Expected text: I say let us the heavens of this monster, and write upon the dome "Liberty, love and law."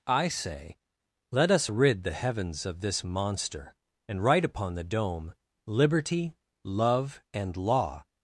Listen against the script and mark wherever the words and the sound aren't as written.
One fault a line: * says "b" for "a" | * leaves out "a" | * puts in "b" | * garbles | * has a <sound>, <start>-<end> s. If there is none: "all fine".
* puts in "rid"